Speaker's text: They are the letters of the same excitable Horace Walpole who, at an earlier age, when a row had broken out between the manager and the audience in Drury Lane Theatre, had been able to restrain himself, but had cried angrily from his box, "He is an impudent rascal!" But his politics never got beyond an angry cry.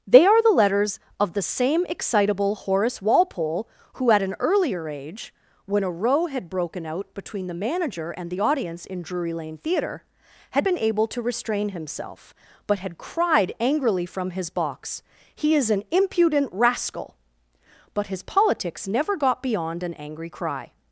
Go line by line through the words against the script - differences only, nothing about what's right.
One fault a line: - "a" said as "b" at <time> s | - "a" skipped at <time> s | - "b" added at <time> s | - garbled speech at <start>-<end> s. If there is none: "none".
none